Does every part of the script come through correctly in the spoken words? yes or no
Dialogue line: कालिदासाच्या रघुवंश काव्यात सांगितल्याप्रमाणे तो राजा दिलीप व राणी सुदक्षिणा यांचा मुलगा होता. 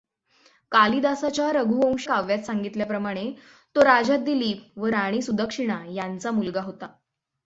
yes